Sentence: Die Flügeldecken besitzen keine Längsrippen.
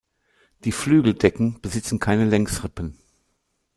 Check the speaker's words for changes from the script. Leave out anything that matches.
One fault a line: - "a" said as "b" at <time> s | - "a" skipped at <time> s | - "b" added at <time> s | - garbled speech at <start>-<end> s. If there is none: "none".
none